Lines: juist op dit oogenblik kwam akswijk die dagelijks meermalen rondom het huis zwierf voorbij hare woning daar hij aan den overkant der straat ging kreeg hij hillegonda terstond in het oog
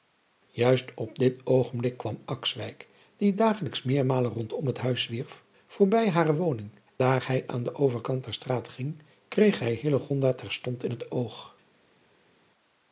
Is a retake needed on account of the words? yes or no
no